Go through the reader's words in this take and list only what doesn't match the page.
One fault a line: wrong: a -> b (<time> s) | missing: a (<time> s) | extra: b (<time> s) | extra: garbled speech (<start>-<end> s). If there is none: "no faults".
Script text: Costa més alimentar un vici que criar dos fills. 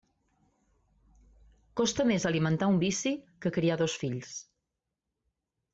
no faults